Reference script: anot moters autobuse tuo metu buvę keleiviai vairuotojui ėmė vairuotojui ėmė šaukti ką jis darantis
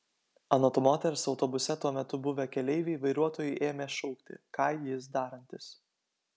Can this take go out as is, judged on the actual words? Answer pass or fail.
fail